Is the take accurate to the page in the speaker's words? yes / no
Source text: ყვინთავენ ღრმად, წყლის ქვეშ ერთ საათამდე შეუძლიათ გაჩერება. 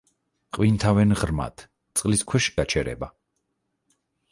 no